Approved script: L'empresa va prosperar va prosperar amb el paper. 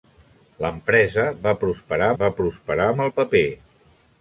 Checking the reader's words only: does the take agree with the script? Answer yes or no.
yes